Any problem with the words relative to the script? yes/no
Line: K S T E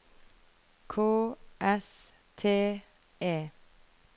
no